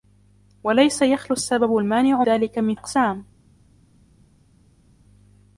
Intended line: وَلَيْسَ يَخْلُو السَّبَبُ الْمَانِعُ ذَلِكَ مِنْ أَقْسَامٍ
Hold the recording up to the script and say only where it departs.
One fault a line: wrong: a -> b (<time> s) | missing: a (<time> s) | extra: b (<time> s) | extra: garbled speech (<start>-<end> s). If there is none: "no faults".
no faults